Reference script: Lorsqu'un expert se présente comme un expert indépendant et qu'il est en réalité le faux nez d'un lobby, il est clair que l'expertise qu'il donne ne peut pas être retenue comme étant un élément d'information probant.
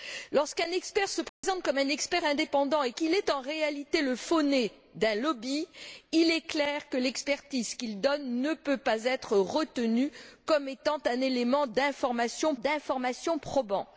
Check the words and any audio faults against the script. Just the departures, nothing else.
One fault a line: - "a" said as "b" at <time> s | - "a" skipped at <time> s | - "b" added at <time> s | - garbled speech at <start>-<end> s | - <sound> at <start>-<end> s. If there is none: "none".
- dropout at 1.3-1.4 s
- "d'information" added at 12.6 s